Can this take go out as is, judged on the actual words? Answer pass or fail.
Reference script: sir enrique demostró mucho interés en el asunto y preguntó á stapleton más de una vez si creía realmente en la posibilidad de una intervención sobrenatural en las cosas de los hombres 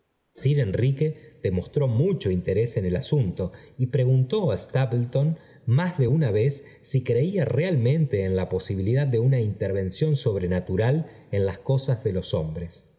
pass